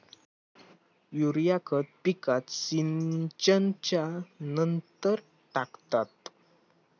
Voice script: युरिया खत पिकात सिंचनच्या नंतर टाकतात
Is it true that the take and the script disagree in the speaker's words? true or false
false